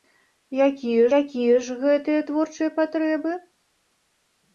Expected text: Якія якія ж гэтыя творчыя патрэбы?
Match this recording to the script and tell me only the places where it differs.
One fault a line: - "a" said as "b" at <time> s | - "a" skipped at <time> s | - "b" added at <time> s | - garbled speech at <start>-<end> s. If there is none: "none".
none